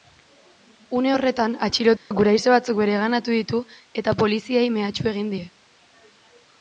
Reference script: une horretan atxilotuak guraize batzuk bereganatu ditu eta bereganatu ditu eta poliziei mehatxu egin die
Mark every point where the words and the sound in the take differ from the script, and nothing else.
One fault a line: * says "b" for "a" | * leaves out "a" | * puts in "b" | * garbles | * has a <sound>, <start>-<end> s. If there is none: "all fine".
* has a dropout, 2.0-2.1 s
* leaves out "bereganatu ditu eta"